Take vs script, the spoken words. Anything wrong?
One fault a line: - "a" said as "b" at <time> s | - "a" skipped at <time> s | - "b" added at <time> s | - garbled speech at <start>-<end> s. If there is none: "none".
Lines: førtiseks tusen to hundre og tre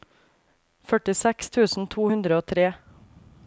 none